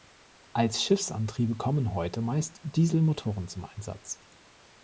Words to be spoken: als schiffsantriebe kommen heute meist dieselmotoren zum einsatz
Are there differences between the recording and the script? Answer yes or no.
no